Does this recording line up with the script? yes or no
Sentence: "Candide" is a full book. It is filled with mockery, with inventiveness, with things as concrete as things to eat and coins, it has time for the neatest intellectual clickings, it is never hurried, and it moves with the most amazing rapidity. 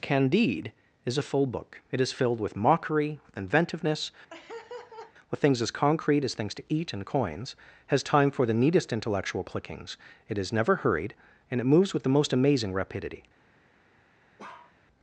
no